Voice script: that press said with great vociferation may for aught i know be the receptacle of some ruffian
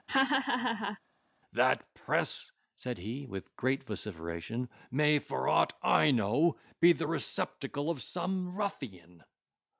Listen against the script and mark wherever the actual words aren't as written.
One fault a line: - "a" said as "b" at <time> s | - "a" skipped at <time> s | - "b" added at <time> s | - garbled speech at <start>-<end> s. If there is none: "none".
- "he" added at 3.0 s